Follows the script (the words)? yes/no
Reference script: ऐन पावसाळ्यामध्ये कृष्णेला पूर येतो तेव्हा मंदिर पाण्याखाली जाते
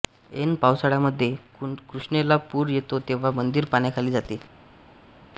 yes